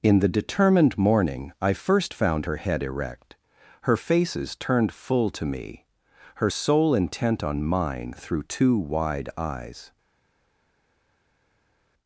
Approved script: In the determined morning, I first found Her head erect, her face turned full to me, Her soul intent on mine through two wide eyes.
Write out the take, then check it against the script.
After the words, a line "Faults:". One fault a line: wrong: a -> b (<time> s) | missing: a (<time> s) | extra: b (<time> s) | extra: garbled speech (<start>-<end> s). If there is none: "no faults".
In the determined morning, I first found Her head erect, her faces turned full to me, Her soul intent on mine through two wide eyes.
Faults:
wrong: face -> faces (4.0 s)